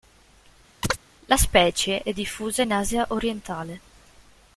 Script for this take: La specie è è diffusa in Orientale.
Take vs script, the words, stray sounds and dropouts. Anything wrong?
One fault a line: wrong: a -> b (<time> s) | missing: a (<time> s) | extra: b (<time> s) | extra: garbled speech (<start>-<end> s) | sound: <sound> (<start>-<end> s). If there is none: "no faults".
sound: chirp (0.8-1.0 s)
missing: è (2.1 s)
extra: Asia (2.7 s)